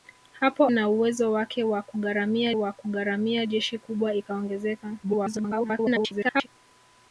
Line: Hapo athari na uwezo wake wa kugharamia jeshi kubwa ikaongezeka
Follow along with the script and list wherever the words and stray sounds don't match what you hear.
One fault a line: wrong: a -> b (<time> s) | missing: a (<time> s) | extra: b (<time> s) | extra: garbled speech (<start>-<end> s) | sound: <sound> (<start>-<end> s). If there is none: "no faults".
missing: athari (0.7 s)
extra: wa kugharamia (2.5 s)
extra: garbled speech (5.0-6.5 s)